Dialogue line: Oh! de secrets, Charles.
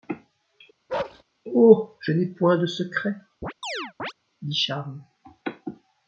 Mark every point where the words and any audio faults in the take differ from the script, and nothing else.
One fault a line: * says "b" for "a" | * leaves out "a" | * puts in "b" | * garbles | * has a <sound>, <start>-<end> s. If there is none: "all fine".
* has a bark, 0.9-1.2 s
* puts in "je n'ai point"
* has a chirp, 3.4-4.1 s
* puts in "dit"